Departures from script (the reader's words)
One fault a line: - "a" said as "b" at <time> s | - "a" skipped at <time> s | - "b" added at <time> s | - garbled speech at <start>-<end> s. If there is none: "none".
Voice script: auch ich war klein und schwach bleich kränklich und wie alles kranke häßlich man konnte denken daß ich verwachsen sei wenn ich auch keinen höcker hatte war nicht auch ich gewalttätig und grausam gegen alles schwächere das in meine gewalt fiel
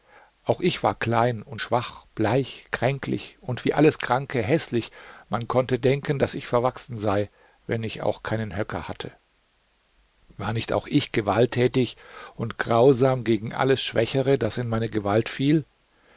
none